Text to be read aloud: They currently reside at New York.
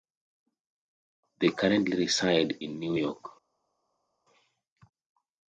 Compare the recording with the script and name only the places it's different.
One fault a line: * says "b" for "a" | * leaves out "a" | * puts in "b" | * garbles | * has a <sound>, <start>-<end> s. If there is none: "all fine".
* says "in" for "at"